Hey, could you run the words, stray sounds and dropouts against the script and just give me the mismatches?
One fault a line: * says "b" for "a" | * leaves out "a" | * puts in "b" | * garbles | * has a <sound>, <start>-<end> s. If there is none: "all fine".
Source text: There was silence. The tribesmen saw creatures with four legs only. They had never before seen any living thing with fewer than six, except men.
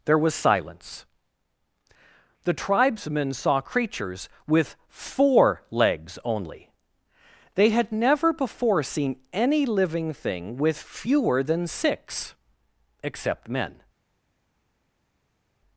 all fine